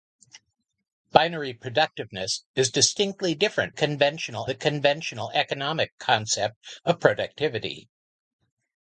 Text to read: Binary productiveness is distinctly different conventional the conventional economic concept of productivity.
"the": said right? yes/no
yes